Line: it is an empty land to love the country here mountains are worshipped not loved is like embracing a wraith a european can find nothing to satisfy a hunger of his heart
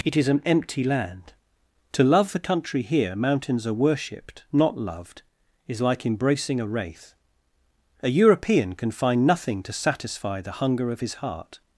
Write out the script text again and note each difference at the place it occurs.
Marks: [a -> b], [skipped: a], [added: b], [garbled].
it is an empty land to love the country here mountains are worshipped not loved is like embracing a wraith a european can find nothing to satisfy [a -> the] hunger of his heart